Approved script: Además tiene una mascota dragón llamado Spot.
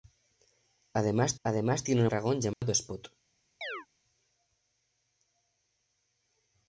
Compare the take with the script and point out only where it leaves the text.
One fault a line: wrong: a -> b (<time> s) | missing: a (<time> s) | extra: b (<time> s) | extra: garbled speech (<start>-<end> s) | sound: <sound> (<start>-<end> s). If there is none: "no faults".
extra: además (1.4 s)
missing: mascota (2.1 s)
sound: dropout (2.5-2.6 s)
sound: chirp (3.6-3.9 s)